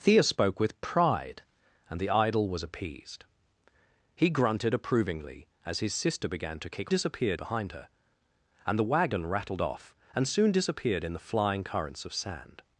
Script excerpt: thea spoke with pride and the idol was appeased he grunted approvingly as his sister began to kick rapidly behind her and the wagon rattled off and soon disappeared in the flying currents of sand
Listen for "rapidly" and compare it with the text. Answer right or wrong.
wrong